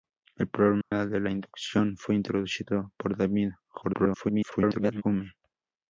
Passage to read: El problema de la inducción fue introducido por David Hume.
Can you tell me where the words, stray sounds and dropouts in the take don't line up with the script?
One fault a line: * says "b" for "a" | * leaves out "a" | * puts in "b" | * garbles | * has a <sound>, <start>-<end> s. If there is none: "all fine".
* has a dropout, 0.8-0.9 s
* garbles